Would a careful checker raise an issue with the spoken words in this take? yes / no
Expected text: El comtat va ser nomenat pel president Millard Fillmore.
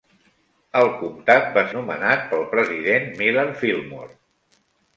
yes